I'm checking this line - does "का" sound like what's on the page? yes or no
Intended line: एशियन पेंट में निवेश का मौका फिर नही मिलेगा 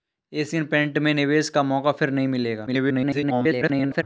yes